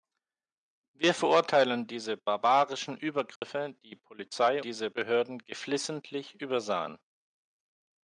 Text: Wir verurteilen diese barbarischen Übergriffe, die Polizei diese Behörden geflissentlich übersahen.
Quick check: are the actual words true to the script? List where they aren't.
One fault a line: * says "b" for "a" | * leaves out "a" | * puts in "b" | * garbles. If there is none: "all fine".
all fine